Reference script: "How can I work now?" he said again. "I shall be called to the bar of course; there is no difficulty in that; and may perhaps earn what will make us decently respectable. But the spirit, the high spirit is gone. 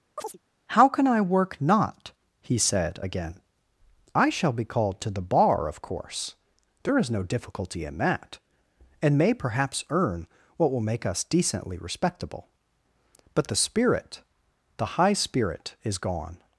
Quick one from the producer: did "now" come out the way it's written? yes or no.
no